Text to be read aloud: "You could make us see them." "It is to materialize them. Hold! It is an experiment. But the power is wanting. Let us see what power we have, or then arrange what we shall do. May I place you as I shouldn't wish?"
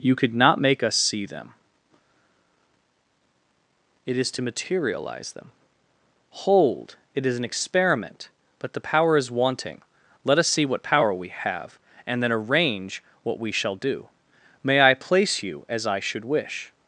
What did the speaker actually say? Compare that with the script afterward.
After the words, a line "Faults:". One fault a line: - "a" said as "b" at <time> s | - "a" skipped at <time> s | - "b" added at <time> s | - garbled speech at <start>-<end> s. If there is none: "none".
"You could not make us see them." "It is to materialize them. Hold! It is an experiment. But the power is wanting. Let us see what power we have, and then arrange what we shall do. May I place you as I should wish?"
Faults:
- "not" added at 0.3 s
- "or" said as "and" at 12.1 s
- "shouldn't" said as "should" at 16.0 s